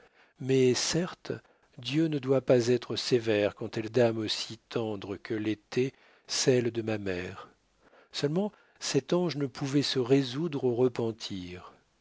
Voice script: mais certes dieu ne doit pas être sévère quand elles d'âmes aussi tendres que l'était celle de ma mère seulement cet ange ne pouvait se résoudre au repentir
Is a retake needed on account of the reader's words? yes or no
no